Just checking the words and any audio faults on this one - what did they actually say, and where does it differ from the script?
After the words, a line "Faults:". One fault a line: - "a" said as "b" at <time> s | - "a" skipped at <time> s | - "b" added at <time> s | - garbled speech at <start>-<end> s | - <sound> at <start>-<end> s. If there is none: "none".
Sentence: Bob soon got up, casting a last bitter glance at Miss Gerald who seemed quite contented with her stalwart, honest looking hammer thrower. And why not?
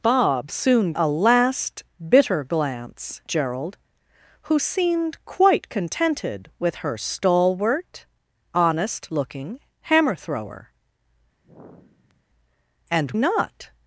Bob soon a last bitter glance Gerald who seemed quite contented with her stalwart, honest looking hammer thrower. And not?
Faults:
- "got up casting" skipped at 0.9 s
- "at Miss" skipped at 3.2 s
- sigh at 11.4-12.3 s
- "why" skipped at 13.1 s